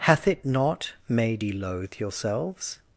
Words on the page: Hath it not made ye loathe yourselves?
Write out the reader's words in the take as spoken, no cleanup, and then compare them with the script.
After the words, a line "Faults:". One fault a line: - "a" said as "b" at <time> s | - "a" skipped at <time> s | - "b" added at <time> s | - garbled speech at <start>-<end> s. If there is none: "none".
Hath it not made ye loathe yourselves?
Faults:
none